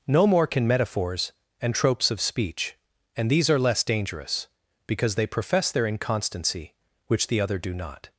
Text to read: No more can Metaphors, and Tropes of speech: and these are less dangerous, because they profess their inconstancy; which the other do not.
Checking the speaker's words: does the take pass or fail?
pass